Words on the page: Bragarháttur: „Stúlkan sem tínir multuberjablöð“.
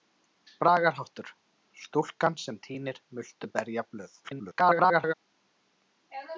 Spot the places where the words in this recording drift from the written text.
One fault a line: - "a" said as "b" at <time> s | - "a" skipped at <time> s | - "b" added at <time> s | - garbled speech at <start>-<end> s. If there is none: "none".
- garbled speech at 4.2-5.1 s